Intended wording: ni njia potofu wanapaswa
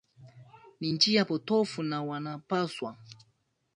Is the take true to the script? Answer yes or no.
no